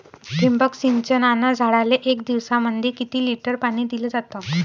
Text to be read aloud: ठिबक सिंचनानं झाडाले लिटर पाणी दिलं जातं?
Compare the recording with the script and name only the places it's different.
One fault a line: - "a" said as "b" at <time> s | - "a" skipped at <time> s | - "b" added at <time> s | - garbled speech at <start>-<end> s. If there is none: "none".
- "एक दिवसामंदी किती" added at 2.0 s